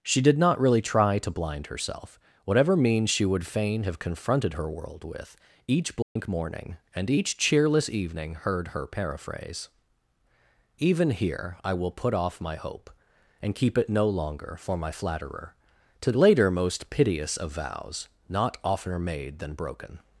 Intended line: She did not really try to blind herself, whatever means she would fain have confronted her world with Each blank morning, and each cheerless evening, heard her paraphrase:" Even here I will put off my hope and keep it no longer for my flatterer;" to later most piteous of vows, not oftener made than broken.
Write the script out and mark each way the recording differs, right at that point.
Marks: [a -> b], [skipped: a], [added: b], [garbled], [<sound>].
She did not really try to blind herself, whatever means she would fain have confronted her world with Each blank [dropout] morning, and each cheerless evening, heard her paraphrase:" Even here I will put off my hope and keep it no longer for my flatterer;" to later most piteous of vows, not oftener made than broken.